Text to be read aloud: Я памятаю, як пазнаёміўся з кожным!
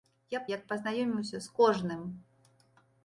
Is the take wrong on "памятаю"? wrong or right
wrong